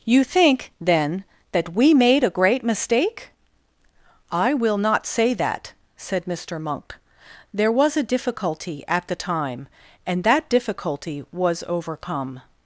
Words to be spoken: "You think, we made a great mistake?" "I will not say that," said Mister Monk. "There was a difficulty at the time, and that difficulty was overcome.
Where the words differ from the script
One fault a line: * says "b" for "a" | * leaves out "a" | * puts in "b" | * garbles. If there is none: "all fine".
* puts in "then that"